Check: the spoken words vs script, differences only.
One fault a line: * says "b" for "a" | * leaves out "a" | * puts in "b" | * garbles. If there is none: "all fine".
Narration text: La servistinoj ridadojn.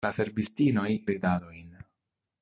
all fine